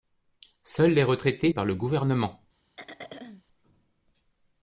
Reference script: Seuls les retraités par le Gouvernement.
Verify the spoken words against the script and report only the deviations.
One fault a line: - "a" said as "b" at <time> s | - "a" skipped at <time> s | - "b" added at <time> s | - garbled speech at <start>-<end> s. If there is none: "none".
none